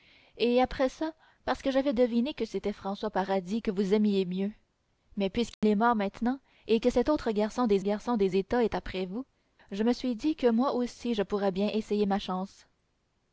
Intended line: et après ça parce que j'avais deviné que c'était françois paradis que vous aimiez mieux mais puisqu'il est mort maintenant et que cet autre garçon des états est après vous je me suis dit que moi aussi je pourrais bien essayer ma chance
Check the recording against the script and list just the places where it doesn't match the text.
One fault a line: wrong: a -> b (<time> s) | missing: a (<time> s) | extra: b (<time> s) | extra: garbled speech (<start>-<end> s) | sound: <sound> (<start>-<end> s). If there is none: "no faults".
sound: dropout (5.5-5.6 s)
extra: garçon des (7.8 s)